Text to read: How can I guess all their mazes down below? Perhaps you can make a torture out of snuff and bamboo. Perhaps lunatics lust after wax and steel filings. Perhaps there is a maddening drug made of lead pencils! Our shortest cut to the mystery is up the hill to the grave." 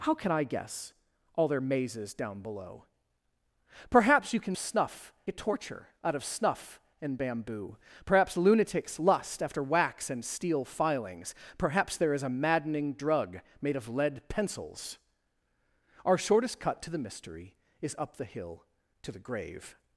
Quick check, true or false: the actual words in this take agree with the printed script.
false